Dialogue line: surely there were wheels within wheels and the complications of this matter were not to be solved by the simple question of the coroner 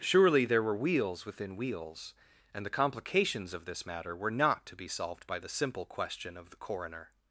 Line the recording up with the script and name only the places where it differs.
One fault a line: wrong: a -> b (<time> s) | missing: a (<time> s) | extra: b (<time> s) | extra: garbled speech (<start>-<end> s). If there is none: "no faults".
no faults